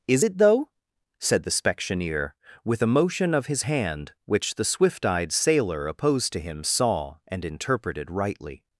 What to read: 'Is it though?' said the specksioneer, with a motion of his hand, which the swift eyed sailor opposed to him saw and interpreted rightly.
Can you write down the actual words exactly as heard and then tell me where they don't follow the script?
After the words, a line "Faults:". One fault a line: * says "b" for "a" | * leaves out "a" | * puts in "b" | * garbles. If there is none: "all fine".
'Is it though?' said the specksioneer, with a motion of his hand, which the swift eyed sailor opposed to him saw and interpreted rightly.
Faults:
all fine